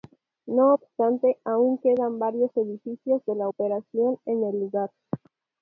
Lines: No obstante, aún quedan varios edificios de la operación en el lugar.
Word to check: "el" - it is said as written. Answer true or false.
true